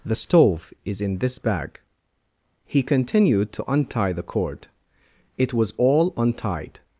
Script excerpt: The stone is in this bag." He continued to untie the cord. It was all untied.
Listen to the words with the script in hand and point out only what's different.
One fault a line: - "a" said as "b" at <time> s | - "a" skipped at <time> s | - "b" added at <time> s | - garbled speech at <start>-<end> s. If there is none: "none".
- "stone" said as "stove" at 0.1 s